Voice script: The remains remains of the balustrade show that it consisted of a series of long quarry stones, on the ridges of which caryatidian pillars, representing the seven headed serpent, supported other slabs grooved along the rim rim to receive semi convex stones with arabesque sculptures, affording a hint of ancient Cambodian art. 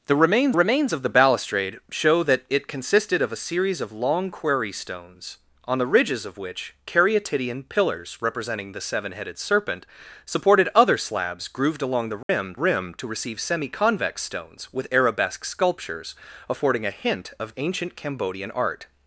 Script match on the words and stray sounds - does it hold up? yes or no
no